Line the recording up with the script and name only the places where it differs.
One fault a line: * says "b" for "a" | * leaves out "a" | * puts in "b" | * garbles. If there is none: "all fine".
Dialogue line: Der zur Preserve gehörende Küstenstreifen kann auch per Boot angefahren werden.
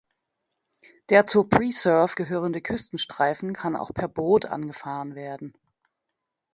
all fine